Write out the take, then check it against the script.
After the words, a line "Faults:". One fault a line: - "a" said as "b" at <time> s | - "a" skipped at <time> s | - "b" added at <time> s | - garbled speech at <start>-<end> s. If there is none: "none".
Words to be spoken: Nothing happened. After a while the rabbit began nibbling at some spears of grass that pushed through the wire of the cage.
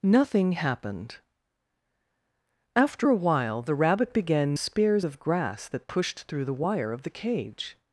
Nothing happened. After a while the rabbit began spears of grass that pushed through the wire of the cage.
Faults:
- "nibbling at some" skipped at 4.6 s